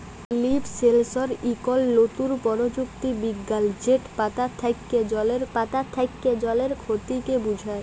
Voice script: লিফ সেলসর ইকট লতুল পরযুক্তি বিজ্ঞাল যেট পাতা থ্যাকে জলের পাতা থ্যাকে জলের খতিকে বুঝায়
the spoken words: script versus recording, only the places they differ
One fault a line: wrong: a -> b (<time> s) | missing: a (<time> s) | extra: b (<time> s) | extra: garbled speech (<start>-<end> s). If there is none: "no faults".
no faults